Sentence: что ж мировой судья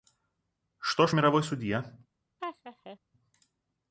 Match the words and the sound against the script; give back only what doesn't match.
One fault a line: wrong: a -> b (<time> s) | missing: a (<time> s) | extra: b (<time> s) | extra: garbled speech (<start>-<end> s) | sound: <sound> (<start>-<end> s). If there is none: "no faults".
sound: laugh (2.4-3.0 s)